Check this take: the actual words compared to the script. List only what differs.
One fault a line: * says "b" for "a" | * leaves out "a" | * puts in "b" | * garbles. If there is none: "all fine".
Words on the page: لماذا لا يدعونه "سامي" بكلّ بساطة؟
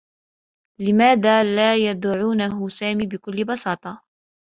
all fine